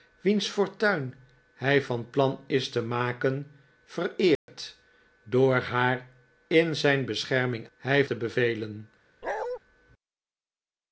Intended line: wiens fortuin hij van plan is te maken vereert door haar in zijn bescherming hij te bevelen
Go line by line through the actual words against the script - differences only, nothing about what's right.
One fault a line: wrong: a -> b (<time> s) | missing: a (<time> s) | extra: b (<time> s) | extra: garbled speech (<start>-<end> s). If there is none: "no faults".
no faults